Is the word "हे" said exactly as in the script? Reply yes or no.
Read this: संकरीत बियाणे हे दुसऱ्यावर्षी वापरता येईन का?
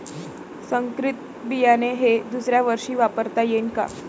yes